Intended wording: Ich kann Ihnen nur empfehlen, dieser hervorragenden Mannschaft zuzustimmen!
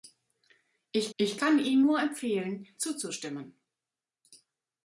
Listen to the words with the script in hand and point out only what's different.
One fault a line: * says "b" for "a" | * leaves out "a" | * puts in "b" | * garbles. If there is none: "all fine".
* puts in "ich"
* leaves out "dieser hervorragenden Mannschaft"